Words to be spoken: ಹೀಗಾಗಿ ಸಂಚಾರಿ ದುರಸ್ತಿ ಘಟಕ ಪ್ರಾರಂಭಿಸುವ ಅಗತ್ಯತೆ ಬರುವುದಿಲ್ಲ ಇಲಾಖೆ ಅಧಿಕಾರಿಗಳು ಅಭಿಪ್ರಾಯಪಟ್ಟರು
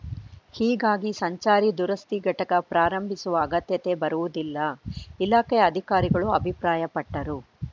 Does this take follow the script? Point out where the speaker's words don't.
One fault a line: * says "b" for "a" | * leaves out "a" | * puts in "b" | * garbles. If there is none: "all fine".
all fine